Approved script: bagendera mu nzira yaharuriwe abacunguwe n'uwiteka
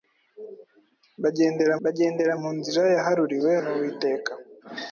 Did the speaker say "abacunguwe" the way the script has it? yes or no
no